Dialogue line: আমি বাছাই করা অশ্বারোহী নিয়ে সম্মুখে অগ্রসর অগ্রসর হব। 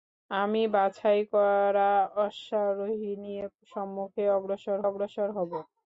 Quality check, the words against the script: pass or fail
pass